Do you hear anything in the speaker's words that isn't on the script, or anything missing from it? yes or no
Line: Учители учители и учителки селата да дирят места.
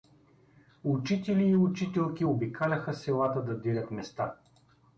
yes